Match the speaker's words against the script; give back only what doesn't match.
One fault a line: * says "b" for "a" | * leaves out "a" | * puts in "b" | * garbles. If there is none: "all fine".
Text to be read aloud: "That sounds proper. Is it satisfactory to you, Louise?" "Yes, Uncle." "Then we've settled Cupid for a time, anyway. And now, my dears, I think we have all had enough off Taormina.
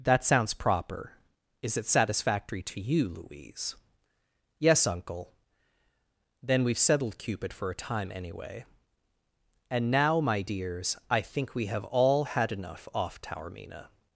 all fine